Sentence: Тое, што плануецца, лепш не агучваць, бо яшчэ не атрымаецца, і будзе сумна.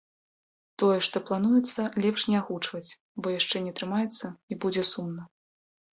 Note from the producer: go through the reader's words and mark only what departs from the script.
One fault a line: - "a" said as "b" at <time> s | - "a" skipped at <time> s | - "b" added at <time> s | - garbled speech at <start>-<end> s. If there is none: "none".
none